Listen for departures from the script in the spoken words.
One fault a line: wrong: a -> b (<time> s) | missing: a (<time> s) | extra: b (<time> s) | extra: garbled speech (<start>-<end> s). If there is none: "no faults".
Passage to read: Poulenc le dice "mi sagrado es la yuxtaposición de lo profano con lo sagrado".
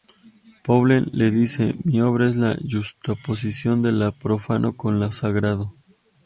wrong: sagrado -> obra (2.0 s)